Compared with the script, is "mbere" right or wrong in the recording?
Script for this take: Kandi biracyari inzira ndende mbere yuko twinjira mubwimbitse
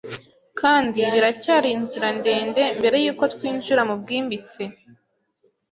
right